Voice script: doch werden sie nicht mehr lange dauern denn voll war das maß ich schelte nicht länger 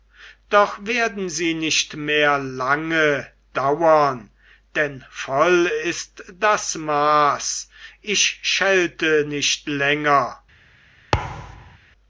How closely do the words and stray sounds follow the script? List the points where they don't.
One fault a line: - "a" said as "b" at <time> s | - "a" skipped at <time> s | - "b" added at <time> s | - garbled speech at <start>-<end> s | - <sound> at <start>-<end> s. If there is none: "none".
- "war" said as "ist" at 5.8 s
- thud at 11.1-11.8 s